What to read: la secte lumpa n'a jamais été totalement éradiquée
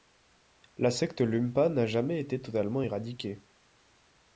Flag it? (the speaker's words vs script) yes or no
no